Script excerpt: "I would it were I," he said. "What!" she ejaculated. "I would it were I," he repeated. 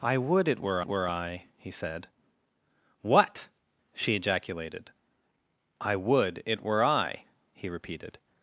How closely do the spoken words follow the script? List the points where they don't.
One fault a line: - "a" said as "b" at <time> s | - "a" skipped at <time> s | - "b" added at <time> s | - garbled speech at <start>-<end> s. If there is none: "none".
- "were" added at 0.9 s